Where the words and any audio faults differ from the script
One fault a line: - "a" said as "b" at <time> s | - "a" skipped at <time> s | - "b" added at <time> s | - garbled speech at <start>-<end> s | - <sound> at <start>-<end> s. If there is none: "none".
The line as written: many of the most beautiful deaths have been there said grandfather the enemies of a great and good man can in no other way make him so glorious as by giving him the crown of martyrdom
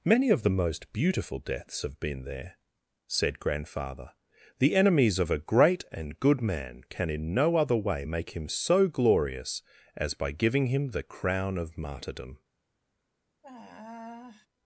- sigh at 13.4-14.5 s